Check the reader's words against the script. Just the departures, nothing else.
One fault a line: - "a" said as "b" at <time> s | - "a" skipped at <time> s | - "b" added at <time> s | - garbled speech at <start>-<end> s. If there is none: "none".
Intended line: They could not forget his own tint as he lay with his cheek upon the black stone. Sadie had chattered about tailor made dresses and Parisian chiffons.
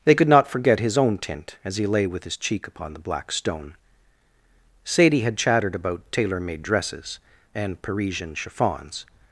none